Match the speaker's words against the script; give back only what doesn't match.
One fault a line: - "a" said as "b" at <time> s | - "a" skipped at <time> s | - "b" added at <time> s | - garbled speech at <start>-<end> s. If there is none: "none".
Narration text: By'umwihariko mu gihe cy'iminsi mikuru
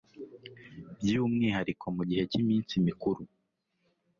none